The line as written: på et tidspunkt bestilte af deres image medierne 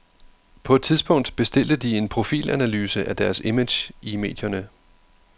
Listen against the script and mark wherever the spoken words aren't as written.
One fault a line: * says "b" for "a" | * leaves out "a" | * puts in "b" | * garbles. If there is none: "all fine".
* puts in "de en profilanalyse"
* puts in "i"